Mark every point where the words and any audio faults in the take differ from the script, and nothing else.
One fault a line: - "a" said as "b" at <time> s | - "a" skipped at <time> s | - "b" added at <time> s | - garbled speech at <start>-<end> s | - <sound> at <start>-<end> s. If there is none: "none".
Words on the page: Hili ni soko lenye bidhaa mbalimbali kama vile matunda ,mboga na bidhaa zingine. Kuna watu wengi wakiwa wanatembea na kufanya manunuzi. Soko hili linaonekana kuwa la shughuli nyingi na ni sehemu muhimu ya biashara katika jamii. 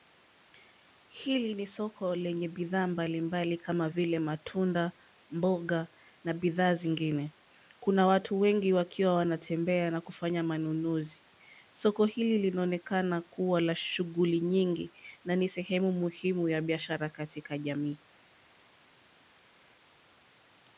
none